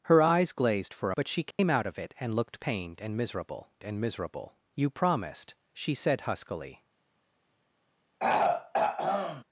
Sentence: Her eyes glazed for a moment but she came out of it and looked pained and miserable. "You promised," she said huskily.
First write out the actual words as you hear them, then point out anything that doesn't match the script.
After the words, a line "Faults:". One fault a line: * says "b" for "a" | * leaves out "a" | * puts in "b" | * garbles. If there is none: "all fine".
Her eyes glazed for but she came out of it and looked pained and miserable and miserable. "You promised," she said huskily.
Faults:
* leaves out "a moment"
* puts in "and miserable"